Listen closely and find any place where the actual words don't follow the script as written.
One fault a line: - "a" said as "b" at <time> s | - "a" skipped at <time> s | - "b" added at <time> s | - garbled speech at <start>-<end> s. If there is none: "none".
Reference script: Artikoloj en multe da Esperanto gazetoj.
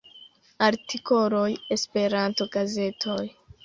- "en multe da" skipped at 1.5 s